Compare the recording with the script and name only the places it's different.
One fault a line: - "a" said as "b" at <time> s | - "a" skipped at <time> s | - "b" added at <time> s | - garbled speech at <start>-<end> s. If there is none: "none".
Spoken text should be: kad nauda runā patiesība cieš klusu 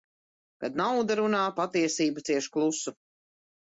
none